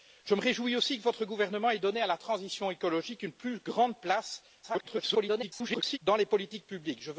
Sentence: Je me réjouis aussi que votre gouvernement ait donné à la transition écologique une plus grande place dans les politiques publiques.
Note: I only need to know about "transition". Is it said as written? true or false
true